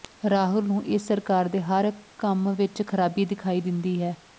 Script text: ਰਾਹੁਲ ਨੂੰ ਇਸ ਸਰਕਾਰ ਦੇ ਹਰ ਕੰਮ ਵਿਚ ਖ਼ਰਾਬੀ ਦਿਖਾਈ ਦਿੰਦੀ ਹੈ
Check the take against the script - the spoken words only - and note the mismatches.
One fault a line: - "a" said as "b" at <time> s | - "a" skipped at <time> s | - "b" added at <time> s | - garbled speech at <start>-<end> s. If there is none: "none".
none